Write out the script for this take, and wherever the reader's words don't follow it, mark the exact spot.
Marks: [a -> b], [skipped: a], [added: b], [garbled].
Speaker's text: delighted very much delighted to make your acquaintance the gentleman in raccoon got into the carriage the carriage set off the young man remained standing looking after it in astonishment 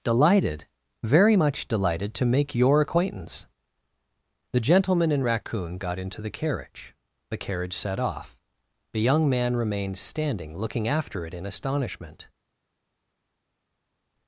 delighted very much delighted to make your acquaintance the gentleman in raccoon got into the carriage the carriage set off the young man remained standing looking after it in astonishment